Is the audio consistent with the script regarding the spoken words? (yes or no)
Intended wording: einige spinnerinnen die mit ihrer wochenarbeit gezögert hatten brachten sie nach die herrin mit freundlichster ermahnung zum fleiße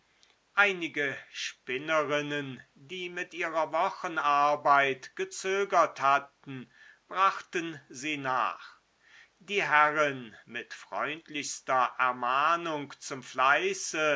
yes